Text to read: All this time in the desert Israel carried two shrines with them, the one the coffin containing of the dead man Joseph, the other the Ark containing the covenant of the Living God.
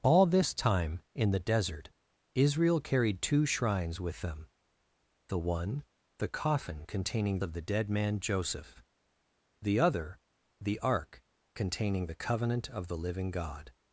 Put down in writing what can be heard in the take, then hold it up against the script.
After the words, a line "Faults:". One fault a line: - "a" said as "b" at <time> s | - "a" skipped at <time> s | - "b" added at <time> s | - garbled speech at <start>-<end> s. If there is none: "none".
All this time in the desert Israel carried two shrines with them, the one the coffin containing of the dead man Joseph, the other the Ark containing the covenant of the Living God.
Faults:
none